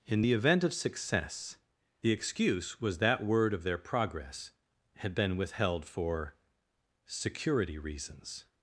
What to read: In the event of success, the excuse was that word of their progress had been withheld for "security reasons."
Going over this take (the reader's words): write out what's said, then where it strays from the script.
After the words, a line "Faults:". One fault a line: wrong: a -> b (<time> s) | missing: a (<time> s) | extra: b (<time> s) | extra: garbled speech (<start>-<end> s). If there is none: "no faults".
In the event of success, the excuse was that word of their progress had been withheld for "security reasons."
Faults:
no faults